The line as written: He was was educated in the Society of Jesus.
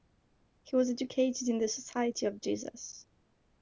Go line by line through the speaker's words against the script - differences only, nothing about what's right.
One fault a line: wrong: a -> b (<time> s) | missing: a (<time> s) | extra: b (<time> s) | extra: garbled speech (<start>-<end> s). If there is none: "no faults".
missing: was (0.9 s)